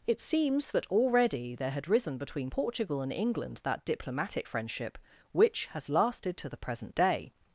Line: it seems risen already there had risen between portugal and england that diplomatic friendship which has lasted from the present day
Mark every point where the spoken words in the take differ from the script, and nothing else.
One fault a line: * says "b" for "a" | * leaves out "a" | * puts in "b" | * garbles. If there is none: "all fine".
* says "that" for "risen"
* says "to" for "from"